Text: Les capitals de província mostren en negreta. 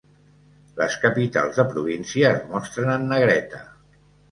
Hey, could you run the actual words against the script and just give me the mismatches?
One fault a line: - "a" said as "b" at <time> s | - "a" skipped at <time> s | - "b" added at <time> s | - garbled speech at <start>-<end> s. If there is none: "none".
- "es" added at 2.4 s